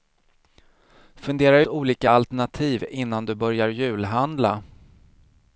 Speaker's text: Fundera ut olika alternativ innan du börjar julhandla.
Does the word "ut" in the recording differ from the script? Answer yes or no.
yes